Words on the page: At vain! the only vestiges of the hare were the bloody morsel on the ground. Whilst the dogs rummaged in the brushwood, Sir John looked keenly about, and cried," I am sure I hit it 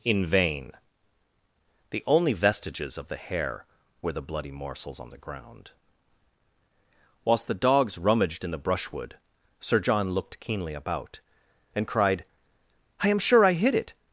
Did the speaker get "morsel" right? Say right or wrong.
wrong